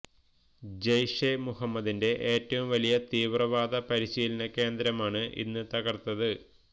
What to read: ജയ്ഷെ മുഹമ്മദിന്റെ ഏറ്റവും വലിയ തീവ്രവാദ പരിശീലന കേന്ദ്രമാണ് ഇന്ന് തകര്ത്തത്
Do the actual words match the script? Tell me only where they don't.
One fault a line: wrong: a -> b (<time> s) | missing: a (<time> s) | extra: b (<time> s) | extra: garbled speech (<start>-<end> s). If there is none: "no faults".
no faults